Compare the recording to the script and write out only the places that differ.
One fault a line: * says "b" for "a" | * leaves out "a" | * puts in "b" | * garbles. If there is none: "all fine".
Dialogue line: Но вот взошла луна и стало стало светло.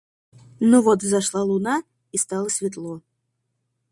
* leaves out "стало"